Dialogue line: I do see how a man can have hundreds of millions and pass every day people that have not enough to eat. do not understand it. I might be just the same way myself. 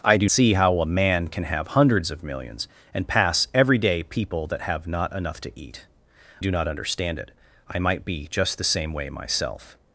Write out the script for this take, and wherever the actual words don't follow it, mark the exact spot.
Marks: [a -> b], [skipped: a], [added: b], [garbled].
I do see how a man can have hundreds of millions and pass every day people that have not enough to eat. do not understand it. I might be just the same way myself.